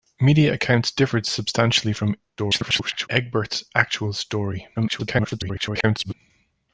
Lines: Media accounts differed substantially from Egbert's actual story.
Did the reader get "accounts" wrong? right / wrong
right